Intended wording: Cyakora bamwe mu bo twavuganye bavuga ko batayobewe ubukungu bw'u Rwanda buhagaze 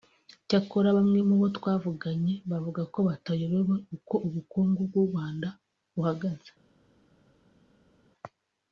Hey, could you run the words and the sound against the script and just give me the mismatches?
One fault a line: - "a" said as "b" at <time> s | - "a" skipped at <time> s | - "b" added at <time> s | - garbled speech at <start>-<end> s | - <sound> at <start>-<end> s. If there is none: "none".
- "uko" added at 4.0 s